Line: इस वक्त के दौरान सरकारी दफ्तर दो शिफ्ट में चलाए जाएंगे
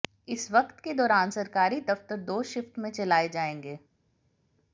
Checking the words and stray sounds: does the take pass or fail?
pass